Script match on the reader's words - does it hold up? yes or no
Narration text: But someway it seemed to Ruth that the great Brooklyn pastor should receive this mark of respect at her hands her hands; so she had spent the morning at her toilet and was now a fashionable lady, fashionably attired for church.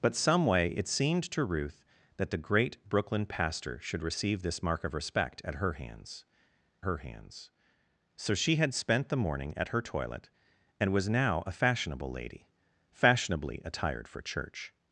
yes